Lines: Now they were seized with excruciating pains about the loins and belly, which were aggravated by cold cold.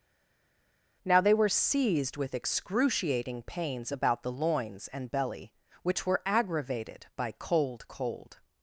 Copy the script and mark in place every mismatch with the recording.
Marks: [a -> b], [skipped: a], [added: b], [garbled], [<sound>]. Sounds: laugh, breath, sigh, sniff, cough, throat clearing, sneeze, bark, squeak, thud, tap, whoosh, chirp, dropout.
Now they were seized with excruciating pains about the loins and belly, which were aggravated by cold cold.